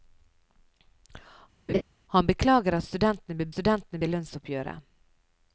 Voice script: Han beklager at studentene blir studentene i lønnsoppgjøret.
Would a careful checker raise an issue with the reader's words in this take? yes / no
no